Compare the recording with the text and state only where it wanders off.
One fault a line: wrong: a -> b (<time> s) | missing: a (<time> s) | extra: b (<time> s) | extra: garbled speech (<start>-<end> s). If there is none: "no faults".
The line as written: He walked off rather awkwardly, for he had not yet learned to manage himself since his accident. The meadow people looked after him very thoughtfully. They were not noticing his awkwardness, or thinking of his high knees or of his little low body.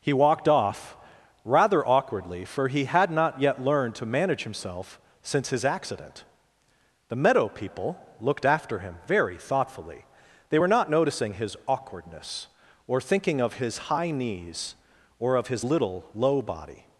no faults